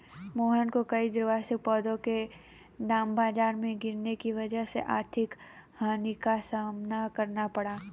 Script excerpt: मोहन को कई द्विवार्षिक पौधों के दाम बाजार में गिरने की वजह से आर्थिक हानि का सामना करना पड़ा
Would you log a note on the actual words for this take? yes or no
no